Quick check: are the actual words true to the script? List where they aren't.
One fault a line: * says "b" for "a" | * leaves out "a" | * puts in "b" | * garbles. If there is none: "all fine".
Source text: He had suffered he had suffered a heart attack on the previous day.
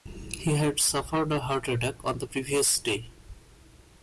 * leaves out "he had suffered"